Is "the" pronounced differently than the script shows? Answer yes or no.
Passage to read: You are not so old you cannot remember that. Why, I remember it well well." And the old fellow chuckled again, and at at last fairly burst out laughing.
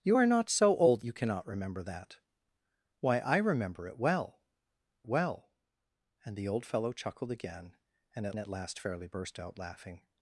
no